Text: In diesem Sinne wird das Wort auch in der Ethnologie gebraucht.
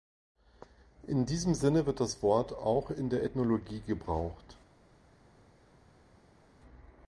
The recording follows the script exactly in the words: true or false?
true